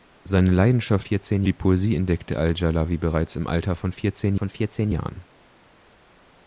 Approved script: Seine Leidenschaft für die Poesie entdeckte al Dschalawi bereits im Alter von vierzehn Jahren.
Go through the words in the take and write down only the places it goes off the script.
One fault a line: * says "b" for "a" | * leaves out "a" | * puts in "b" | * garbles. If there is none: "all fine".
* says "vierzehn" for "für"
* puts in "von vierzehn"